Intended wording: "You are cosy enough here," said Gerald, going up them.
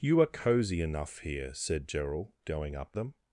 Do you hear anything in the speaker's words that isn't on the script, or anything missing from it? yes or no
no